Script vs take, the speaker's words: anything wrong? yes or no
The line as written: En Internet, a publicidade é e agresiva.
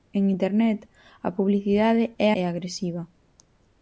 no